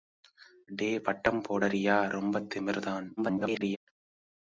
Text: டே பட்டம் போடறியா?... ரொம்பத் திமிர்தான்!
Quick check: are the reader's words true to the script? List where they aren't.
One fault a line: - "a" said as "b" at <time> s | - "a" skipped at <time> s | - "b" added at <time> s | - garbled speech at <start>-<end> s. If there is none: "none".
- garbled speech at 3.2-3.8 s